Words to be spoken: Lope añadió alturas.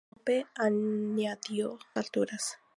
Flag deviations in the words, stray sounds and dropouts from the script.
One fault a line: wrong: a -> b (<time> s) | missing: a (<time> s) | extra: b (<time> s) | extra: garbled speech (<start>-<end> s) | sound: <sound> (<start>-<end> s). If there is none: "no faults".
no faults